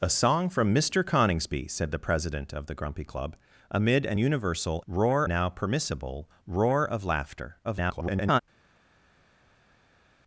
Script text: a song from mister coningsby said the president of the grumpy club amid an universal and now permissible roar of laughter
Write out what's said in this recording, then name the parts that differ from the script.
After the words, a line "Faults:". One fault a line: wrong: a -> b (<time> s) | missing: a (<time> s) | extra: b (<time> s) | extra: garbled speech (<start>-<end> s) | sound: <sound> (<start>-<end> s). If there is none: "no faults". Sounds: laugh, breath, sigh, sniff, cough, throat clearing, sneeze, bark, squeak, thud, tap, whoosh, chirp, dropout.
a song from mister coningsby said the president of the grumpy club amid an universal roar now permissible roar of laughter [garbled]
Faults:
wrong: and -> roar (4.9 s)
extra: garbled speech (7.6-8.4 s)